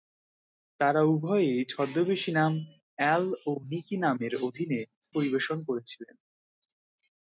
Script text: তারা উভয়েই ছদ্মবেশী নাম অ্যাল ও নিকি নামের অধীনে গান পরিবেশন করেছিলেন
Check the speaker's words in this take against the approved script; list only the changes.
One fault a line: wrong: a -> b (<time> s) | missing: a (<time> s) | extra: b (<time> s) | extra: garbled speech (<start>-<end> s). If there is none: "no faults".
missing: গান (4.8 s)